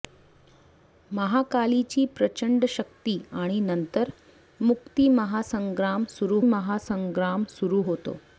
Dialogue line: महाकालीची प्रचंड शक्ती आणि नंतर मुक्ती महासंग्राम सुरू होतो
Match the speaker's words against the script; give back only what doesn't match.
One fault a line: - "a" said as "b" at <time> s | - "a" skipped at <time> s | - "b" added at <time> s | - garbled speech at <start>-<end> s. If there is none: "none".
- "महासंग्राम सुरू" added at 6.5 s